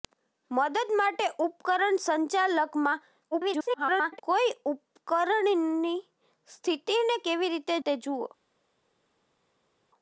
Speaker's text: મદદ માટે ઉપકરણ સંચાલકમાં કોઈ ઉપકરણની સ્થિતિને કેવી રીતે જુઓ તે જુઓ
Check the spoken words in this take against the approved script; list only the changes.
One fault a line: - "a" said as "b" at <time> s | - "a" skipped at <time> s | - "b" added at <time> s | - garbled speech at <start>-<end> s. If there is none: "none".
- garbled speech at 3.3-4.2 s
- "જુઓ" skipped at 7.8 s